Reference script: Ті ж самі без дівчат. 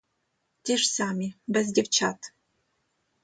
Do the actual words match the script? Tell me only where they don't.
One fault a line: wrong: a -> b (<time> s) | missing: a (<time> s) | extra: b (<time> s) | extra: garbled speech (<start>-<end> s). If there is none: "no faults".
no faults